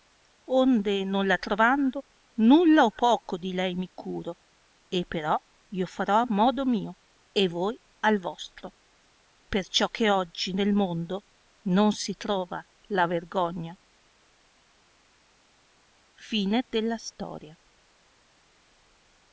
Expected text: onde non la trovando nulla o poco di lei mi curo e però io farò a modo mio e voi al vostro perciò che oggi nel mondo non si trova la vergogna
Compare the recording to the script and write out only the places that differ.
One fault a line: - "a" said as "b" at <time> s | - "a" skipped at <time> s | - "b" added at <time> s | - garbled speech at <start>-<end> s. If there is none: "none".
none